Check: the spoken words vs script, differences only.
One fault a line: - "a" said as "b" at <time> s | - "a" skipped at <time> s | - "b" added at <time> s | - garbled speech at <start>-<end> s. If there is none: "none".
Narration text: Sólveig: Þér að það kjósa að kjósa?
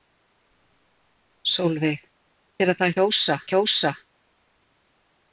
none